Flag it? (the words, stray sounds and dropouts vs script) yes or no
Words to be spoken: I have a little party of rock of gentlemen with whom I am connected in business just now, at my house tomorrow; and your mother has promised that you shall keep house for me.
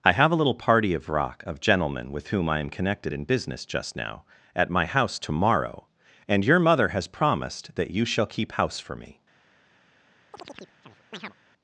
yes